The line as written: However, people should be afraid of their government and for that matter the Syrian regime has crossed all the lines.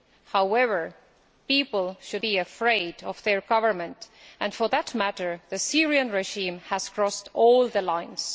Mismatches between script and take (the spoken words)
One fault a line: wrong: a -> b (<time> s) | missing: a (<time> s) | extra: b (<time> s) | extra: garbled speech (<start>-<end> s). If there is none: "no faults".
no faults